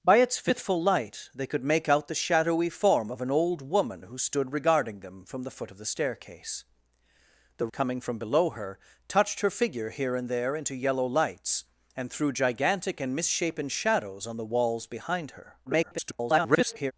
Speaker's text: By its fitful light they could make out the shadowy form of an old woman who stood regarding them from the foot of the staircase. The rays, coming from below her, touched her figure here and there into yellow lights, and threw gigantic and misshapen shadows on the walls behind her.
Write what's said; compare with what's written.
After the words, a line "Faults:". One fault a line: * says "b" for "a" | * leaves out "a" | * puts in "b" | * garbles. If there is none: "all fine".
By its fitful light they could make out the shadowy form of an old woman who stood regarding them from the foot of the staircase. The coming from below her, touched her figure here and there into yellow lights, and threw gigantic and misshapen shadows on the walls behind her. [garbled]
Faults:
* leaves out "rays"
* garbles